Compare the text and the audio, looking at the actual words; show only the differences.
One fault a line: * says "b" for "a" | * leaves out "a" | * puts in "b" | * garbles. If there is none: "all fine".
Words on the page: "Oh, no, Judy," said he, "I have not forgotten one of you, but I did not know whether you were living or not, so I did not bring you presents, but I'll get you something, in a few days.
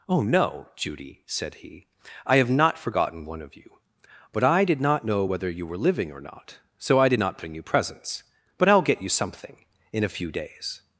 all fine